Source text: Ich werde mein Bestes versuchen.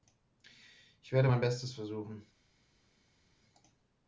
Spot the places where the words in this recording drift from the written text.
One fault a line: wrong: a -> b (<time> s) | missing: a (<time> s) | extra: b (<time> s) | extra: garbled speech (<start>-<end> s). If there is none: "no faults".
no faults